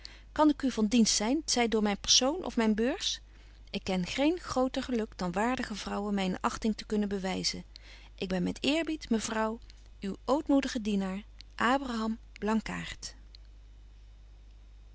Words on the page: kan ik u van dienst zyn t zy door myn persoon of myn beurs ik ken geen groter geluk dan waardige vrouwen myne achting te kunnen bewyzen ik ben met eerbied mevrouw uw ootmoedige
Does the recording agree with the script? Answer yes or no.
yes